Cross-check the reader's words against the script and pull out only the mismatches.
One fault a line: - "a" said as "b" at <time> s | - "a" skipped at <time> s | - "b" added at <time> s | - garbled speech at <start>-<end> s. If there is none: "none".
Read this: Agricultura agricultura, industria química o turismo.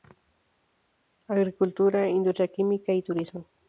- "agricultura" skipped at 2.1 s
- "o" said as "y" at 2.9 s